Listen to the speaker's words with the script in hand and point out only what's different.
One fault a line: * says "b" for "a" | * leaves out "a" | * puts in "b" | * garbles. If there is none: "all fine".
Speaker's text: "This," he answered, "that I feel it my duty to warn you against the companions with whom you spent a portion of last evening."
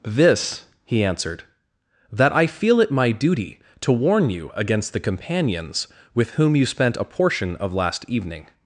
all fine